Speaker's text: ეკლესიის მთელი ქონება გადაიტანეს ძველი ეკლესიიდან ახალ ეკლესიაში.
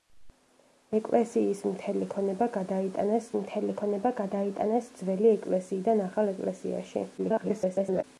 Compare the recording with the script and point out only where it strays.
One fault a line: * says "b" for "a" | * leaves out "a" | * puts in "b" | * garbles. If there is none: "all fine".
* puts in "მთელი ქონება გადაიტანეს"
* garbles